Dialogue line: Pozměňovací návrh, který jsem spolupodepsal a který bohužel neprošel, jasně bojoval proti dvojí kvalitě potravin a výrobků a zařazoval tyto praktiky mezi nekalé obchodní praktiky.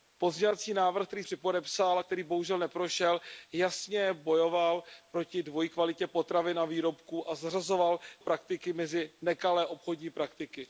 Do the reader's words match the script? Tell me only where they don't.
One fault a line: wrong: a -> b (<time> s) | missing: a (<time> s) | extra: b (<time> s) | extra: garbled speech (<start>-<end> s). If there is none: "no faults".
missing: jsem (1.2 s)
missing: tyto (8.0 s)